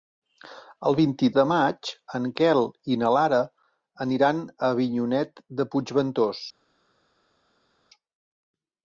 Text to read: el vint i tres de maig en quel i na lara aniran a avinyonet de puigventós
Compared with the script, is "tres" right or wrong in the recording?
wrong